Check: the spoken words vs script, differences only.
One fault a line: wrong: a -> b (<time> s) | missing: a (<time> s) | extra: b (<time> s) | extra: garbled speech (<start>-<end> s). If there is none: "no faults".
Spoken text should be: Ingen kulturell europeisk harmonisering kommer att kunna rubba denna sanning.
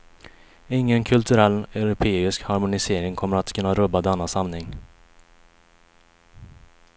no faults